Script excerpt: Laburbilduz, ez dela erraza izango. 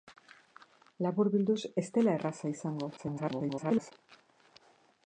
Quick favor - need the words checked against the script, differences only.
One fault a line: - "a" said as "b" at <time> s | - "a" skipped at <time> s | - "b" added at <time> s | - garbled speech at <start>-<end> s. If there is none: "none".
- garbled speech at 3.0-3.9 s